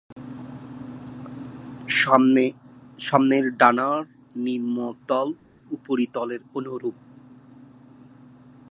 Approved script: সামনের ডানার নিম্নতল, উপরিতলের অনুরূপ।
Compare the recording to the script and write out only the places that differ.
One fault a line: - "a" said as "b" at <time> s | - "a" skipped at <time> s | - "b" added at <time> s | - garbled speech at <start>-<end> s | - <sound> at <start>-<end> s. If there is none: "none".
none